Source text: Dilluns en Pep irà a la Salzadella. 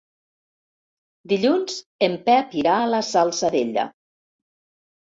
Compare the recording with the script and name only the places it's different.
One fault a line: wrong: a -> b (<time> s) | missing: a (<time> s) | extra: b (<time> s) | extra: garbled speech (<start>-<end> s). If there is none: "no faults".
no faults